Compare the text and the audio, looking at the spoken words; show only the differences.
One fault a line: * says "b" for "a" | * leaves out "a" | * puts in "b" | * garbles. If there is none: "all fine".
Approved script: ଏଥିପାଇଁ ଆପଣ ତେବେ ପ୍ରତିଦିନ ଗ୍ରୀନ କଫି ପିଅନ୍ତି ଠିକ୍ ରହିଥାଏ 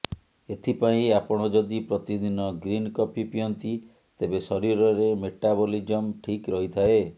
* says "ଯଦି" for "ତେବେ"
* puts in "ତେବେ ଶରୀରରେ ମେଟାବଲିଜମ"